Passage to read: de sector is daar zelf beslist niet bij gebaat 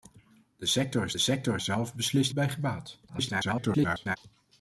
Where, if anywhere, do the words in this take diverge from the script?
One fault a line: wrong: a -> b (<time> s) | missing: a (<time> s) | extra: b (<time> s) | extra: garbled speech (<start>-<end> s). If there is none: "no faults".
wrong: daar -> sector (1.2 s)
missing: niet (2.3 s)
extra: garbled speech (3.1-4.2 s)